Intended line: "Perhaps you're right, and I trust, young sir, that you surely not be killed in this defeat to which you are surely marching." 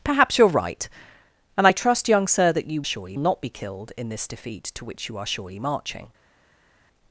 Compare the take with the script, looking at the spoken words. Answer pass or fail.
pass